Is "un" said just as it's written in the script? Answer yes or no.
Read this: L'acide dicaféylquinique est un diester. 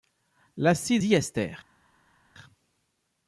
no